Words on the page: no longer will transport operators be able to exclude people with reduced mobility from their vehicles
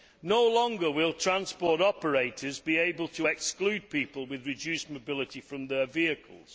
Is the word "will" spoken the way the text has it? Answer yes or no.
yes